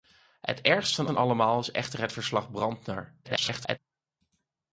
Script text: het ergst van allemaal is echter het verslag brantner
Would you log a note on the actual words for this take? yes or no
yes